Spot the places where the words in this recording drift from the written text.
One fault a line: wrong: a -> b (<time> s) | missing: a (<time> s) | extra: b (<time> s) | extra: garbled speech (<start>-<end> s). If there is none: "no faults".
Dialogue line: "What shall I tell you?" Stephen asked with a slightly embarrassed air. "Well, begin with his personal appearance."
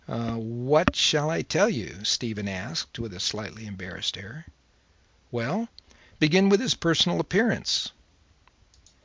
no faults